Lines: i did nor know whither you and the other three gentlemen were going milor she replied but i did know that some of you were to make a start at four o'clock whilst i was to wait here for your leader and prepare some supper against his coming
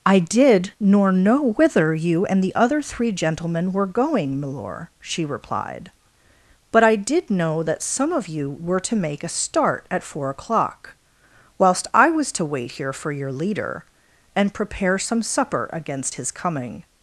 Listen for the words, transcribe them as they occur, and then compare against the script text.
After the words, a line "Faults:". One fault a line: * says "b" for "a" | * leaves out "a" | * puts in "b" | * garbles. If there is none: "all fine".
i did nor know whither you and the other three gentlemen were going milor she replied but i did know that some of you were to make a start at four o'clock whilst i was to wait here for your leader and prepare some supper against his coming
Faults:
all fine